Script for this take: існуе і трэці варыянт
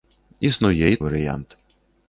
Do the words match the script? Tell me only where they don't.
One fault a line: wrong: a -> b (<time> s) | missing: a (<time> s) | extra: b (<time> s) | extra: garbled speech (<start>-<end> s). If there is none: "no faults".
missing: трэці (1.0 s)